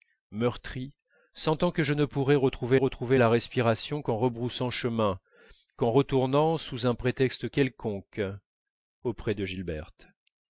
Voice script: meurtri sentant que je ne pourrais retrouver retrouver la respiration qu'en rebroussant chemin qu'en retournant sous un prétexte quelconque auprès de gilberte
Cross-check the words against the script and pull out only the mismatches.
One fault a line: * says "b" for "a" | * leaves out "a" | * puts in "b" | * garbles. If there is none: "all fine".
all fine